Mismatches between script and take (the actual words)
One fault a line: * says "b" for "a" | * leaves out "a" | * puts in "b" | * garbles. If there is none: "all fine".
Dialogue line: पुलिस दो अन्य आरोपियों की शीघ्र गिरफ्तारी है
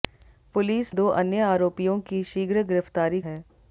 all fine